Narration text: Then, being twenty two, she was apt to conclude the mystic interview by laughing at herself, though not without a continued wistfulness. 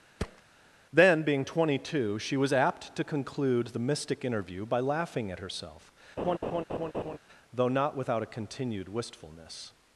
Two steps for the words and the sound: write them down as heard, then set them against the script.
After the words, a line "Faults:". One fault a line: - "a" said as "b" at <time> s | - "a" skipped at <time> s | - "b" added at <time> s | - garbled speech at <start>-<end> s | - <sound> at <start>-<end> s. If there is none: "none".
Then, being twenty two, she was apt to conclude the mystic interview by laughing at herself, though not without a continued wistfulness.
Faults:
- thud at 0.2-0.4 s
- laugh at 6.2-7.2 s